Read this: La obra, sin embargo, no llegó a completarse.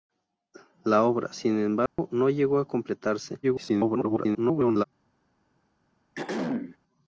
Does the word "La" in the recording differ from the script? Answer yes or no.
no